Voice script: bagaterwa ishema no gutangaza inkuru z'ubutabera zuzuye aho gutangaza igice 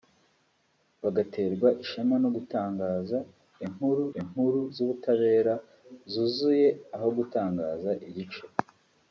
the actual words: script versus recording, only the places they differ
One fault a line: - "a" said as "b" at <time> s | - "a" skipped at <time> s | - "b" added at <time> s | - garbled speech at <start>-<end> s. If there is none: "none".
- "inkuru" added at 4.2 s